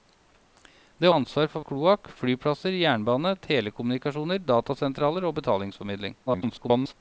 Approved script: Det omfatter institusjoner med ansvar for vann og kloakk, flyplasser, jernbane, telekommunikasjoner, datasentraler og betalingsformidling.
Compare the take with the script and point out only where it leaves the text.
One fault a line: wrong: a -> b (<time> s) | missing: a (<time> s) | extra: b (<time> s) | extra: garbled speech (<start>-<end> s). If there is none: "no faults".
missing: omfatter institusjoner med (1.1 s)
missing: vann (1.7 s)
extra: garbled speech (6.3-6.9 s)